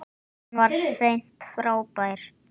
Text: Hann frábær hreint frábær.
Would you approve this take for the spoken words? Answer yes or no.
no